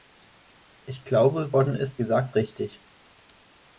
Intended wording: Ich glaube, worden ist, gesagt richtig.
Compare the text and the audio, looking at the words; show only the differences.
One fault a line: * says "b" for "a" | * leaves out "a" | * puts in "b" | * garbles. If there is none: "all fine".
all fine